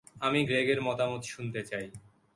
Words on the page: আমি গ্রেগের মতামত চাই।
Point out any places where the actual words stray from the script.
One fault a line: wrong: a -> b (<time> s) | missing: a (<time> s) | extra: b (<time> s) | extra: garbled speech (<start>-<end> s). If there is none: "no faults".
extra: শুনতে (1.3 s)